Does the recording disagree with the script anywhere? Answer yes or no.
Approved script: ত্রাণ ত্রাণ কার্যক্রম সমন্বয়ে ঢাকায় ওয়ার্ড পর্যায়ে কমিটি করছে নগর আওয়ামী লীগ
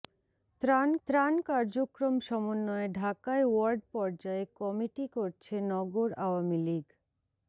no